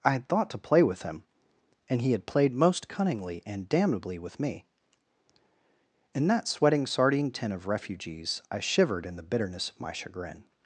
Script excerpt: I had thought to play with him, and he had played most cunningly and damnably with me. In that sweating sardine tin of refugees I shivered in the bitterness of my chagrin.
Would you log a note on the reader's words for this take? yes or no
no